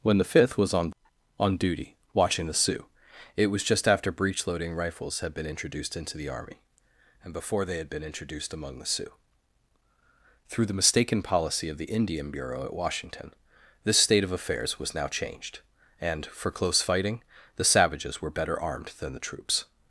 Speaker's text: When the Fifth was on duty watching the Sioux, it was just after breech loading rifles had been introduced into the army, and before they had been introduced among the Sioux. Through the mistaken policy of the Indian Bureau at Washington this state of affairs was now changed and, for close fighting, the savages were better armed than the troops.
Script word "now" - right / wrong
right